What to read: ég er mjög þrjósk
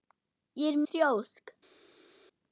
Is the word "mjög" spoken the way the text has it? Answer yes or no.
no